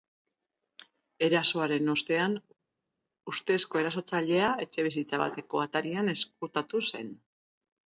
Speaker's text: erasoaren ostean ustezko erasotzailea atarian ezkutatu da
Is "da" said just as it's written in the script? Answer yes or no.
no